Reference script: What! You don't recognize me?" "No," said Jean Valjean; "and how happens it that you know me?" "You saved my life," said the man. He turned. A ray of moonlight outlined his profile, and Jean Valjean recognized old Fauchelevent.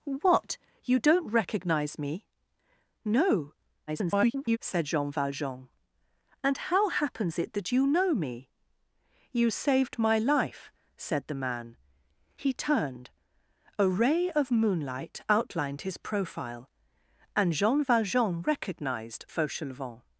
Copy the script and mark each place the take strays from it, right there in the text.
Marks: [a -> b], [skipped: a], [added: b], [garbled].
What! You don't recognize me?" "No," [garbled] said Jean Valjean; "and how happens it that you know me?" "You saved my life," said the man. He turned. A ray of moonlight outlined his profile, and Jean Valjean recognized [skipped: old] Fauchelevent.